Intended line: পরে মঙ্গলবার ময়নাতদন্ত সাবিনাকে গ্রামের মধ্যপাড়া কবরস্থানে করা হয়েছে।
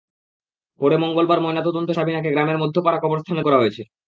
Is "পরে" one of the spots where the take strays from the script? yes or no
no